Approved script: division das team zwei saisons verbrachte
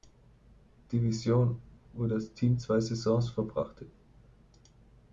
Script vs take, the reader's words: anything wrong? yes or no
yes